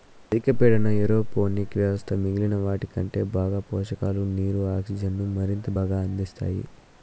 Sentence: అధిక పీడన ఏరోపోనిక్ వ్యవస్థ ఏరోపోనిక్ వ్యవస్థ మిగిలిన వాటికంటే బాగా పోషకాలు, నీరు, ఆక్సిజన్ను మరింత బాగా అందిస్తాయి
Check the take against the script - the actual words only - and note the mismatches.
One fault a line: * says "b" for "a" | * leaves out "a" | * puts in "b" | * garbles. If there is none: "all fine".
* leaves out "ఏరోపోనిక్ వ్యవస్థ"